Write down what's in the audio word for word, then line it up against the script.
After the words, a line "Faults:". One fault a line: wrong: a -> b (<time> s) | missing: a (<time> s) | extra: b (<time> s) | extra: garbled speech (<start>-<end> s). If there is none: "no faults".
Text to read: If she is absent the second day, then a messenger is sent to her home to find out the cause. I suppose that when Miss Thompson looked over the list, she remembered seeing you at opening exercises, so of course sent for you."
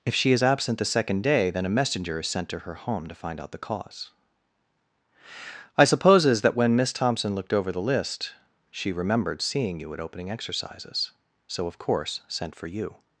If she is absent the second day, then a messenger is sent to her home to find out the cause. I supposes that when Miss Thompson looked over the list, she remembered seeing you at opening exercises, so of course sent for you."
Faults:
wrong: suppose -> supposes (5.8 s)